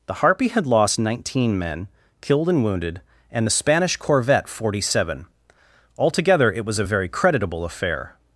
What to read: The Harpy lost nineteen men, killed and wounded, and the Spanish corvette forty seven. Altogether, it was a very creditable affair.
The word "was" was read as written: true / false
true